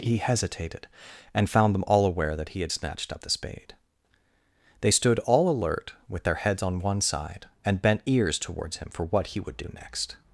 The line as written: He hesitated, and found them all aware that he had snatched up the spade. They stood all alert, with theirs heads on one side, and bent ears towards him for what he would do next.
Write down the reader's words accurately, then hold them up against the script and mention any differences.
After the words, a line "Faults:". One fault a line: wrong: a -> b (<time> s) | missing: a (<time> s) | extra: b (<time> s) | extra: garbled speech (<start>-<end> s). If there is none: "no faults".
He hesitated, and found them all aware that he had snatched up the spade. They stood all alert, with their heads on one side, and bent ears towards him for what he would do next.
Faults:
wrong: theirs -> their (6.2 s)